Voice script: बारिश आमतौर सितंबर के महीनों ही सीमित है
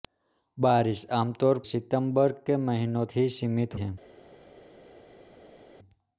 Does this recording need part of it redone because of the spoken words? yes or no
no